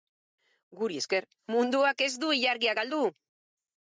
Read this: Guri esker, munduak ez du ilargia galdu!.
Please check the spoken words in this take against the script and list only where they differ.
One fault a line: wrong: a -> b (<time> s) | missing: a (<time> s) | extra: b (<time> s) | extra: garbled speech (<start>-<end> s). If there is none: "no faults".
no faults